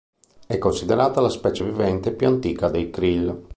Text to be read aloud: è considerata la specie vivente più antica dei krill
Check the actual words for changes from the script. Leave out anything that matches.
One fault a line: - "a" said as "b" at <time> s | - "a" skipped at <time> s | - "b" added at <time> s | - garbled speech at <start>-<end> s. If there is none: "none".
none